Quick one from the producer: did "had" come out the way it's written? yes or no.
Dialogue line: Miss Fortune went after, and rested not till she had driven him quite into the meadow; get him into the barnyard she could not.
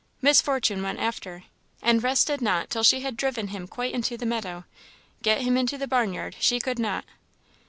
yes